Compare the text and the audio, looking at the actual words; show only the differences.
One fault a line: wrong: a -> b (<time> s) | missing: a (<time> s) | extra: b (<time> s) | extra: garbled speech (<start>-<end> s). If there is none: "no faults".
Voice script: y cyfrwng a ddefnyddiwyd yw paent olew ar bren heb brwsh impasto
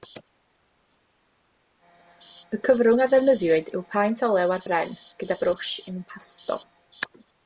wrong: heb -> gyda (5.2 s)